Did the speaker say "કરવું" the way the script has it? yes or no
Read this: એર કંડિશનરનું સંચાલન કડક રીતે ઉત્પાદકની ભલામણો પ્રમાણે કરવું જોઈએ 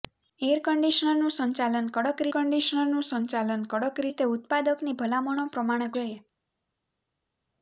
no